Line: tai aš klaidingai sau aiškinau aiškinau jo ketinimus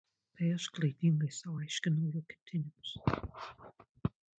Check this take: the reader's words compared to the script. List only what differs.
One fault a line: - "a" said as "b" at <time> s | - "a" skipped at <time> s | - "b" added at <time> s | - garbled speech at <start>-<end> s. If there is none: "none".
- "aiškinau" skipped at 2.1 s